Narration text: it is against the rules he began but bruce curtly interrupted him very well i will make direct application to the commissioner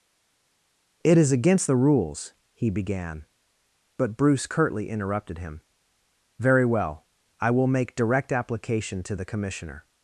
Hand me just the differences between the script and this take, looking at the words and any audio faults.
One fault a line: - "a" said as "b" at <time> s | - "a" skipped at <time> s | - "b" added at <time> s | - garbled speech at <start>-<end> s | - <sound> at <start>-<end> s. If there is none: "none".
none